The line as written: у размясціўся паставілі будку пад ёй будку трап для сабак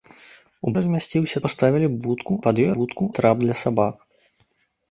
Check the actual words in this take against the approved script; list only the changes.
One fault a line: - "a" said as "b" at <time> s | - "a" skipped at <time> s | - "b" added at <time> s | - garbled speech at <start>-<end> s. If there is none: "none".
none